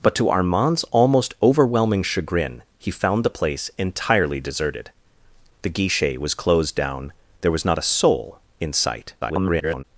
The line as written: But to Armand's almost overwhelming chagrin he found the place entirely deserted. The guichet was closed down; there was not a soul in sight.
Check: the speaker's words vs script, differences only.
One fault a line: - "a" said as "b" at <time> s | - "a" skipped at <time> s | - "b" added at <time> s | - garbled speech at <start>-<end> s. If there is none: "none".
- garbled speech at 9.2-9.8 s